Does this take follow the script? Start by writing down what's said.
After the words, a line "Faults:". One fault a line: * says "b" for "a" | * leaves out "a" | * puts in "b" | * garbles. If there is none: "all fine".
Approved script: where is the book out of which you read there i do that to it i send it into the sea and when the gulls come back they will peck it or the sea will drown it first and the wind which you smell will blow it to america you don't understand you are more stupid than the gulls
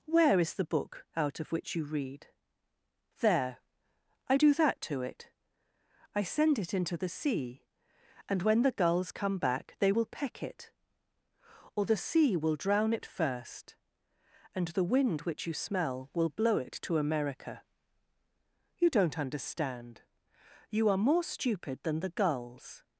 where is the book out of which you read there i do that to it i send it into the sea and when the gulls come back they will peck it or the sea will drown it first and the wind which you smell will blow it to america you don't understand you are more stupid than the gulls
Faults:
all fine